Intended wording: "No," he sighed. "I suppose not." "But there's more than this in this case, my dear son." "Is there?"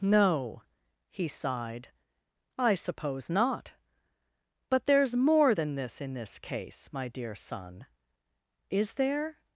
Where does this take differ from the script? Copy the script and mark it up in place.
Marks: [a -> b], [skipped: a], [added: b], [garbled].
"No," he sighed. "I suppose not." "But there's more than this in this case, my dear son." "Is there?"